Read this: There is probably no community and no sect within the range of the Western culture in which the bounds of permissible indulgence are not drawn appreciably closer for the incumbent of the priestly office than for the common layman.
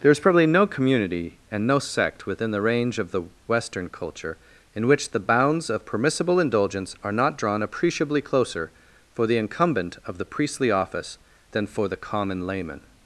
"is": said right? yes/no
yes